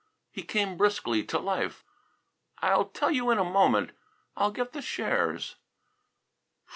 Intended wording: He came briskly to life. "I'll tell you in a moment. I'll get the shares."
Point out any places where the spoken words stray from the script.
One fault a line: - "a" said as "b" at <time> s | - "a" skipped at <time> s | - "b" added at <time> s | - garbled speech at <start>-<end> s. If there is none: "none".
none